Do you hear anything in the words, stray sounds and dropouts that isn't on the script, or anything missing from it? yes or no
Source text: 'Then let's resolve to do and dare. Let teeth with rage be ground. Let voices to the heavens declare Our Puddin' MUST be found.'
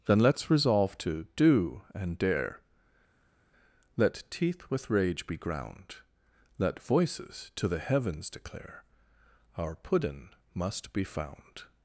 no